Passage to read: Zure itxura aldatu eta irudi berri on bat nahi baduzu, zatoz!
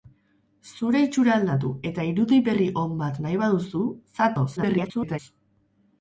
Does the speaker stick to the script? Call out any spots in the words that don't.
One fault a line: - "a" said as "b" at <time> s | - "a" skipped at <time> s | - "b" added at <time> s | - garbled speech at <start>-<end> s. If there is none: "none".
- garbled speech at 4.6-5.2 s